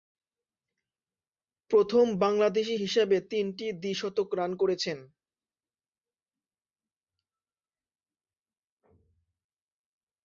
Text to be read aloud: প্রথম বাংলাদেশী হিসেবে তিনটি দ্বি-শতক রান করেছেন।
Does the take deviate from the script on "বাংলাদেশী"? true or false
false